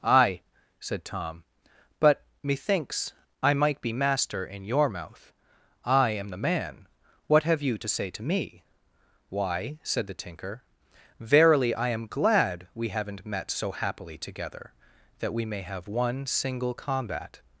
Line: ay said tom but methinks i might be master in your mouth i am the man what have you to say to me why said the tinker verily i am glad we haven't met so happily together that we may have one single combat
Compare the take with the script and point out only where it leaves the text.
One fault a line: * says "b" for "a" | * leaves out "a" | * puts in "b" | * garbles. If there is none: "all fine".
all fine